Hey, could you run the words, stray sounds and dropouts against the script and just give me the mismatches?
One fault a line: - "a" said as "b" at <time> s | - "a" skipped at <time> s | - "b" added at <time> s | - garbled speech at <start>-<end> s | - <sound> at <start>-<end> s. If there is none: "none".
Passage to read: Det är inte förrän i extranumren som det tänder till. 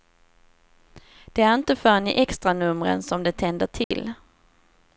- dropout at 3.8-3.9 s